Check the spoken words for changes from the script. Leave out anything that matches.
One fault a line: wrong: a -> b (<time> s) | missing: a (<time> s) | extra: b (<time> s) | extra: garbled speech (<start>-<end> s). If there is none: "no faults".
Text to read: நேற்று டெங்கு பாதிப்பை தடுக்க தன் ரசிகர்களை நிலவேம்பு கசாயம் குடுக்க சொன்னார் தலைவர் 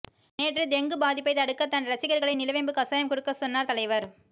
no faults